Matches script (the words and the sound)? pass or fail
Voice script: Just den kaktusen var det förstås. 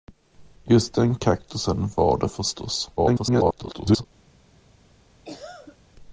fail